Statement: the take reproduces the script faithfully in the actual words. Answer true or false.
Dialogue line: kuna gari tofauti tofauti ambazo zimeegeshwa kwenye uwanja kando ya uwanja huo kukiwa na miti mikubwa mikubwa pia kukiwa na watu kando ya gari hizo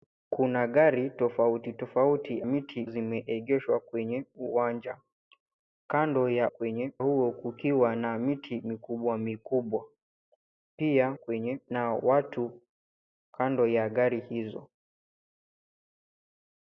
false